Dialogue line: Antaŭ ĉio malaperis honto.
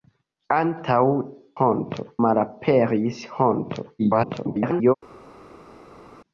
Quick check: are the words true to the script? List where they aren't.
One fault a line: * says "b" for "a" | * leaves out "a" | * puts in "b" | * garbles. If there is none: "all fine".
* says "honto" for "ĉio"
* garbles